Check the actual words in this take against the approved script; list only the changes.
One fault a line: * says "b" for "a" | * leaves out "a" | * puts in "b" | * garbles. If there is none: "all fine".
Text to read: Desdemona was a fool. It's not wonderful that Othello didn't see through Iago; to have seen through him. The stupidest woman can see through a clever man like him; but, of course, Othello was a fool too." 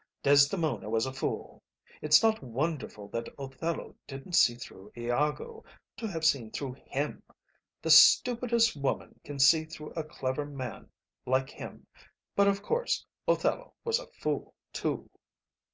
all fine